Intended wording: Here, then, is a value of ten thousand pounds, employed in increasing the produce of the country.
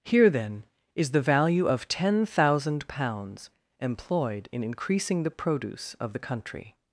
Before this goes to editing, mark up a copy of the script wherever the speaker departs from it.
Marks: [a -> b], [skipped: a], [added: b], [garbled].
Here, then, is [a -> the] value of ten thousand pounds, employed in increasing the produce of the country.